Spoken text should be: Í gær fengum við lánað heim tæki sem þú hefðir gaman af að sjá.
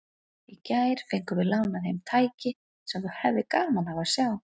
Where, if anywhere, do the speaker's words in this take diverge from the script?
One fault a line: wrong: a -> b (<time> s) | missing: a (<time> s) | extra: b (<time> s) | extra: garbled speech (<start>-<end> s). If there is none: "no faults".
no faults